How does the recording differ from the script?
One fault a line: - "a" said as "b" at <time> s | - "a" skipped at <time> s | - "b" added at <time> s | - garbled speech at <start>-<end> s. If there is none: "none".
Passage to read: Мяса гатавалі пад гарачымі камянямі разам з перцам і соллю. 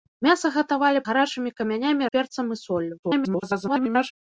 - "пад" skipped at 1.0 s
- "разам" skipped at 2.0 s
- garbled speech at 3.0-4.1 s